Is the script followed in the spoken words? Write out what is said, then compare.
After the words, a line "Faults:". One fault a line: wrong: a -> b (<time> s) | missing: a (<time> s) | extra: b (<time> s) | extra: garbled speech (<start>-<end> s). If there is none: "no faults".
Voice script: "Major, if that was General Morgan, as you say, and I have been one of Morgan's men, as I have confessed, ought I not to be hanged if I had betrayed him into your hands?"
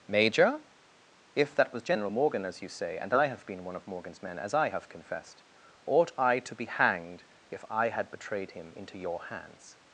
"Major, if that was General Morgan, as you say, and I have been one of Morgan's men, as I have confessed, ought I to be hanged if I had betrayed him into your hands?"
Faults:
missing: not (6.4 s)